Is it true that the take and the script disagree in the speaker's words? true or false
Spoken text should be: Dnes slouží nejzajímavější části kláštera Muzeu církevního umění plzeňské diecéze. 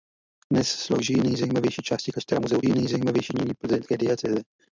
true